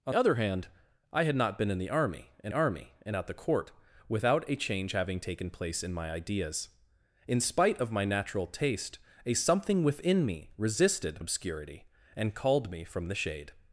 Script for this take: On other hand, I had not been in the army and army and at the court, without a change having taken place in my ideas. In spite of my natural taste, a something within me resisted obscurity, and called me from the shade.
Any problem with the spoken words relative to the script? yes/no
no